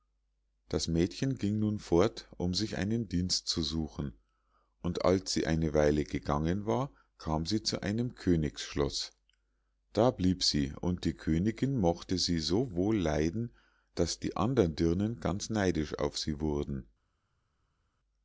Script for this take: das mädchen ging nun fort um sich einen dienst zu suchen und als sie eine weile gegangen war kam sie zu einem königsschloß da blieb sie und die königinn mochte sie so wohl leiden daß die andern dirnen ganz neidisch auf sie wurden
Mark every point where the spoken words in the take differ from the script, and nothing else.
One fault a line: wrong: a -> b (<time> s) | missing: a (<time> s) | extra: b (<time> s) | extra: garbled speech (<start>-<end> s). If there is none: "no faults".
no faults